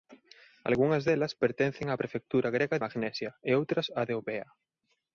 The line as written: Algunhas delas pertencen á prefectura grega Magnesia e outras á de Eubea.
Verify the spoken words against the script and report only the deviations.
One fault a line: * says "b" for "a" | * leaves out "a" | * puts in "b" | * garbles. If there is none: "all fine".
all fine